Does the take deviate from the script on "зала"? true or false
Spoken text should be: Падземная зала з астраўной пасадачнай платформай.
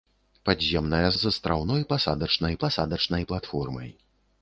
true